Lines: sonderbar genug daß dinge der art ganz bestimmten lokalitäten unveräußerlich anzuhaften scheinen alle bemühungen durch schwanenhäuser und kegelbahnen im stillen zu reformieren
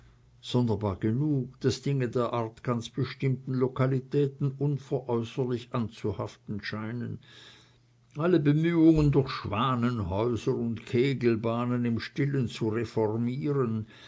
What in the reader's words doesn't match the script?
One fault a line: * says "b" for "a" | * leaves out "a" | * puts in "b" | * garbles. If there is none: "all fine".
all fine